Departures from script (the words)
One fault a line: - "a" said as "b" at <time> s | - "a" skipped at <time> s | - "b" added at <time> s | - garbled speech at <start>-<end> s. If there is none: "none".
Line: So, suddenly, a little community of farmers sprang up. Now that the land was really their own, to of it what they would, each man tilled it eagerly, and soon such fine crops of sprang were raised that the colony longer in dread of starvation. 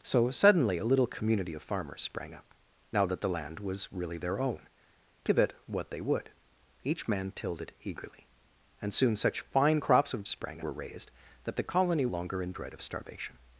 none